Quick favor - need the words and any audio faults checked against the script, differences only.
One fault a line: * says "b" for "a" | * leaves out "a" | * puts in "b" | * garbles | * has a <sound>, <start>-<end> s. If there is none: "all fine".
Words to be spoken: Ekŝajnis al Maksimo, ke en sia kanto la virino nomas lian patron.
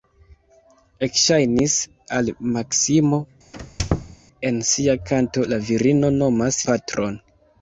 * leaves out "ke"
* has a squeak, 3.5-4.2 s
* leaves out "lian"